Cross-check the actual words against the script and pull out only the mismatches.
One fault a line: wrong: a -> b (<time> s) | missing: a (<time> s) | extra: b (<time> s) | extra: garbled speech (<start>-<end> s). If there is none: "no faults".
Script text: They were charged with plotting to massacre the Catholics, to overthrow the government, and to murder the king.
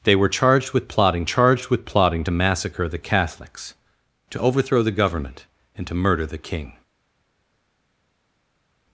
extra: charged with plotting (1.2 s)